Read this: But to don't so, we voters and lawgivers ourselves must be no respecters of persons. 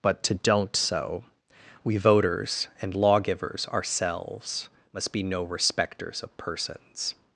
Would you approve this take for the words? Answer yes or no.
yes